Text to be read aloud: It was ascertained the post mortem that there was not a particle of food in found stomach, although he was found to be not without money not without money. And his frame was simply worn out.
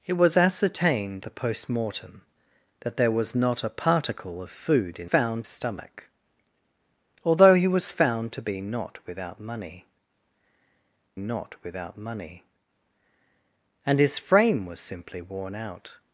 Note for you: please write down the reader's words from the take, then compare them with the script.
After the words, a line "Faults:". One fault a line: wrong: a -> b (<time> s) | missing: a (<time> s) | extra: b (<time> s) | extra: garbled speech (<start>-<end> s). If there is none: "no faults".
It was ascertained the post mortem that there was not a particle of food in found stomach, although he was found to be not without money not without money. And his frame was simply worn out.
Faults:
no faults